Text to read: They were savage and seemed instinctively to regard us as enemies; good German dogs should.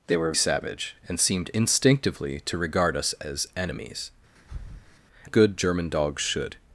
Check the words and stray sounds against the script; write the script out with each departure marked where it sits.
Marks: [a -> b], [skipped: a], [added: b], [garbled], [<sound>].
They were savage and seemed instinctively to regard us as enemies; [breath] good German dogs should.